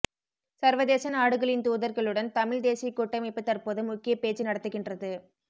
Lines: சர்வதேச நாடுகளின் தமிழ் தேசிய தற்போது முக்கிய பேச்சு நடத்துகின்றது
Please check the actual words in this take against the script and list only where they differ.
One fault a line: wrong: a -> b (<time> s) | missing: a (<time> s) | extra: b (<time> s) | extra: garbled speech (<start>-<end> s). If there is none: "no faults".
extra: தூதர்களுடன் (1.7 s)
extra: கூட்டமைப்பு (2.9 s)